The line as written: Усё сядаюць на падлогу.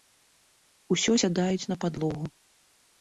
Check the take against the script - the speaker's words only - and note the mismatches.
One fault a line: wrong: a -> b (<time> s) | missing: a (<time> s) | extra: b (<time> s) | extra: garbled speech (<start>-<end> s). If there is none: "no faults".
no faults